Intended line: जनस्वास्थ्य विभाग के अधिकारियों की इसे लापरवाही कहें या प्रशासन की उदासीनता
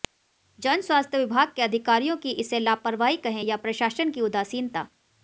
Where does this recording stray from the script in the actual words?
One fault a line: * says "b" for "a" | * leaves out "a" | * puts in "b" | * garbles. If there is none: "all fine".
all fine